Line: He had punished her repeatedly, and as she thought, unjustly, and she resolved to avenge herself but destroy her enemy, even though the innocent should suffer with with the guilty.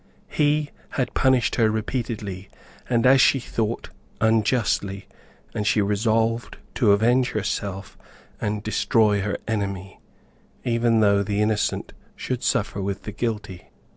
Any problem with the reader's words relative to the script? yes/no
yes